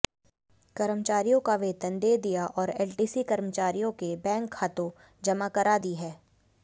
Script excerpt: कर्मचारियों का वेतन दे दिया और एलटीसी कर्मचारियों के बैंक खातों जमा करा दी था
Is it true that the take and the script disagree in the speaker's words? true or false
true